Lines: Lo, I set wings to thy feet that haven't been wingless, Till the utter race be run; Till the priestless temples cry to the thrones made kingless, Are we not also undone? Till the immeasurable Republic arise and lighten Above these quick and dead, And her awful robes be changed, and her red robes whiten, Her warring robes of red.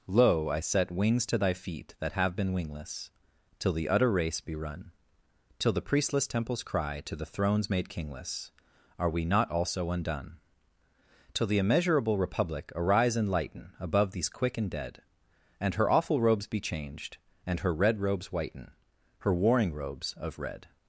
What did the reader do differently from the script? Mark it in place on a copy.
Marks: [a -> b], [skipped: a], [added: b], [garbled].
Lo, I set wings to thy feet that [haven't -> have] been wingless, Till the utter race be run; Till the priestless temples cry to the thrones made kingless, Are we not also undone? Till the immeasurable Republic arise and lighten Above these quick and dead, And her awful robes be changed, and her red robes whiten, Her warring robes of red.